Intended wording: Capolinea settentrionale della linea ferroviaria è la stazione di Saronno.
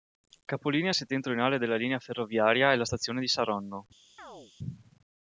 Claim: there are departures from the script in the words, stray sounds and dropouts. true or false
true